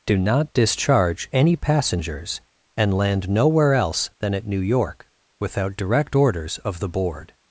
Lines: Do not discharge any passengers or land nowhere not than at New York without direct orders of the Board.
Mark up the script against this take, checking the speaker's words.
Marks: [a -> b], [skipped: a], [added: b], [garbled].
Do not discharge any passengers [or -> and] land nowhere [not -> else] than at New York without direct orders of the Board.